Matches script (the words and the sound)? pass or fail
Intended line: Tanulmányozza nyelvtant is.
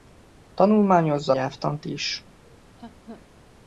fail